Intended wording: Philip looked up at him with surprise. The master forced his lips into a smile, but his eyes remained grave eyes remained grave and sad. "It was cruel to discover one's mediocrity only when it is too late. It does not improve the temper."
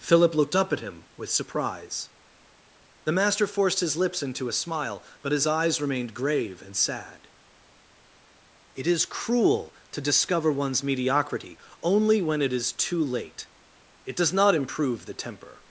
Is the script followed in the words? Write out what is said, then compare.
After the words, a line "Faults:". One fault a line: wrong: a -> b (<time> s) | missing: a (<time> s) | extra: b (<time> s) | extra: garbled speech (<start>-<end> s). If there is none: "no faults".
Philip looked up at him with surprise. The master forced his lips into a smile, but his eyes remained grave and sad. "It is cruel to discover one's mediocrity only when it is too late. It does not improve the temper."
Faults:
missing: eyes remained grave (6.6 s)
wrong: was -> is (8.9 s)